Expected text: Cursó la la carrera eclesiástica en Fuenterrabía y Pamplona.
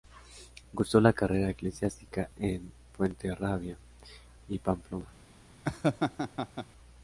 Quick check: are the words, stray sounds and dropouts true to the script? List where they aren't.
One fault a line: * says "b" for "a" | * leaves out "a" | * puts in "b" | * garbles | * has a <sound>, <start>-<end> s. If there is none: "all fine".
* leaves out "la"
* has a laugh, 5.6-6.7 s